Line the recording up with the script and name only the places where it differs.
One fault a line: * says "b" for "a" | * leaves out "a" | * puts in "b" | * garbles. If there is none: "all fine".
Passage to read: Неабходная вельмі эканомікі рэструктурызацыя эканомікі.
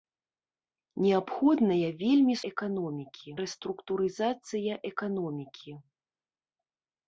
all fine